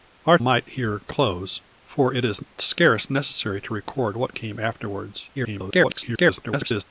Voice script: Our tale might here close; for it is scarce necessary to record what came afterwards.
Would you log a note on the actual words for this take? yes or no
yes